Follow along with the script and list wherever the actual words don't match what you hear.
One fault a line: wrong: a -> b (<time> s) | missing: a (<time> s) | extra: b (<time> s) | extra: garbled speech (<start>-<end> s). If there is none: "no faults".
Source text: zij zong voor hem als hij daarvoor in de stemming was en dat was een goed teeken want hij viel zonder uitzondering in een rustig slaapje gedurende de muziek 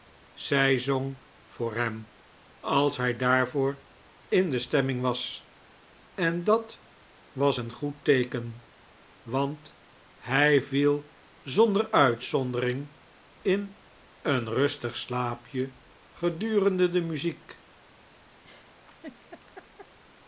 no faults